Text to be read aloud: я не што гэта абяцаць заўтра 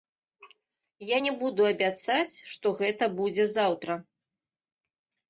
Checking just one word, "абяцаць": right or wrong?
wrong